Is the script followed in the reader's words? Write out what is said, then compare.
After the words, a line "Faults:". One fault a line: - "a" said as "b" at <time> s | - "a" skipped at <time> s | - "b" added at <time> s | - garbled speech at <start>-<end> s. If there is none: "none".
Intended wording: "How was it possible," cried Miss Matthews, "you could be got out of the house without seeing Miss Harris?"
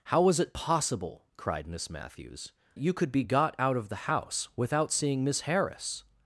"How was it possible," cried Miss Matthews, "you could be got out of the house without seeing Miss Harris?"
Faults:
none